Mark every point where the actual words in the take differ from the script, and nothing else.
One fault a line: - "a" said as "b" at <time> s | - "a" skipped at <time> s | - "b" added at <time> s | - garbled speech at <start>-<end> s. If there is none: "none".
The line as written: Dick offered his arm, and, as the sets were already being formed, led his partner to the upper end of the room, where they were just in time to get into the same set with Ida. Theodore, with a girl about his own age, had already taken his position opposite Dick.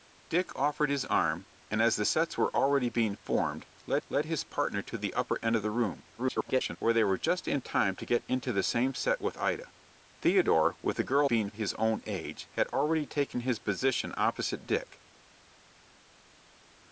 - "led" added at 4.1 s
- garbled speech at 6.2-6.8 s
- "about" said as "being" at 11.2 s